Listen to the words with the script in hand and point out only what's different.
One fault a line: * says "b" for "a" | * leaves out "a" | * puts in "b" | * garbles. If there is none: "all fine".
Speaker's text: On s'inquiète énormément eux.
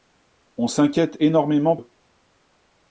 all fine